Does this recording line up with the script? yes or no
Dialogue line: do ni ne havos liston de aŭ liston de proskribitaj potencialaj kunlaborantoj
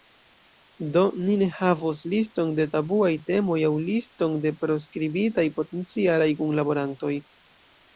no